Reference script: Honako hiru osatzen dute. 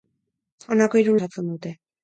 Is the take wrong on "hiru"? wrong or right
right